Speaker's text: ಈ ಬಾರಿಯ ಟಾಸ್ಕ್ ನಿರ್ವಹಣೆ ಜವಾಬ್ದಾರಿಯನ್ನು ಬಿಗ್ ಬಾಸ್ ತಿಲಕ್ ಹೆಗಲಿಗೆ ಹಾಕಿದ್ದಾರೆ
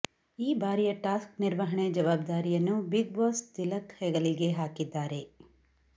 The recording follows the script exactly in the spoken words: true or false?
true